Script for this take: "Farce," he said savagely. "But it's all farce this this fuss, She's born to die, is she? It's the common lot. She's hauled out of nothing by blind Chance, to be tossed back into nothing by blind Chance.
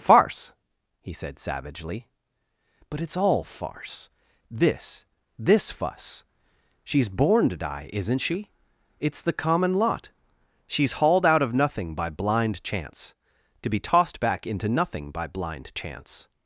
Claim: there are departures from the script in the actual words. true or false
true